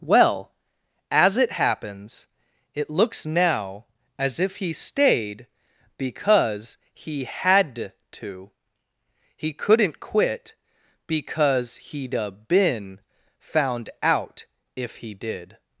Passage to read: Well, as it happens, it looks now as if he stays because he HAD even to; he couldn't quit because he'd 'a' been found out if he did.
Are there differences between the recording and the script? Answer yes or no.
yes